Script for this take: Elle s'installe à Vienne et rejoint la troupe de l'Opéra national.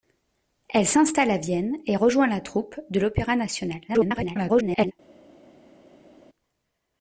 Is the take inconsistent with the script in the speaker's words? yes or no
yes